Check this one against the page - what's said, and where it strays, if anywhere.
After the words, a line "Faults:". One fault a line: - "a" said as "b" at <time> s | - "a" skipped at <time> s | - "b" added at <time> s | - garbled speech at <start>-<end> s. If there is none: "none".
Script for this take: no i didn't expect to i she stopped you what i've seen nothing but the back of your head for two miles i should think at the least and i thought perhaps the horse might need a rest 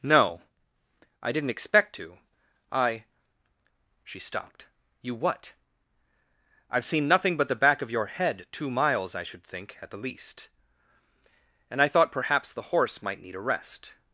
no i didn't expect to i she stopped you what i've seen nothing but the back of your head two miles i should think at the least and i thought perhaps the horse might need a rest
Faults:
- "for" skipped at 8.5 s